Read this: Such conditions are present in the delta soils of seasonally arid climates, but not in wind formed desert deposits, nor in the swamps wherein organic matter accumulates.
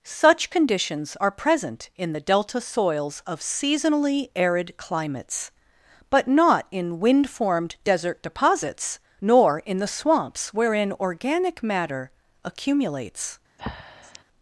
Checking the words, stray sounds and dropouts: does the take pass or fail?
fail